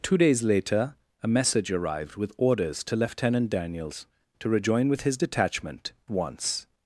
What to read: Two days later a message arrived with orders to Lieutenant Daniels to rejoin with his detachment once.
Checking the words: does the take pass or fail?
pass